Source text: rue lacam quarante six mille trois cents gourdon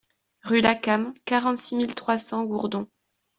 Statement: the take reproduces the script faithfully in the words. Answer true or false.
true